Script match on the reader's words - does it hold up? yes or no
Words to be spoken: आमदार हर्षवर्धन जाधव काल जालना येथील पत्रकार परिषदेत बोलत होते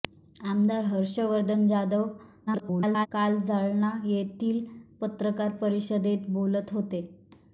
no